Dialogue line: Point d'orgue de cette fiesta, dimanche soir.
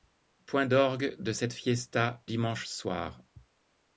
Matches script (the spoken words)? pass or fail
pass